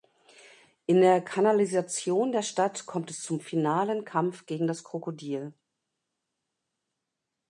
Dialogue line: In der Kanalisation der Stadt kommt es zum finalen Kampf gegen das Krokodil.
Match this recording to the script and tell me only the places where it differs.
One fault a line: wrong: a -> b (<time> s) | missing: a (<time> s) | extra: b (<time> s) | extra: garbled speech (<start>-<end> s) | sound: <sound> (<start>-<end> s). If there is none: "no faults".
no faults